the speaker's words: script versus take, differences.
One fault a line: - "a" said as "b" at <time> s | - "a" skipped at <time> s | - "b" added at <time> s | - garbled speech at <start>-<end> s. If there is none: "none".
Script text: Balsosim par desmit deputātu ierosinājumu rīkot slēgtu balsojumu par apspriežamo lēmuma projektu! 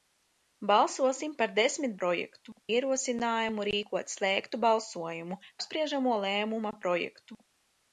- "deputātu" said as "projektu" at 2.0 s
- "par" skipped at 5.4 s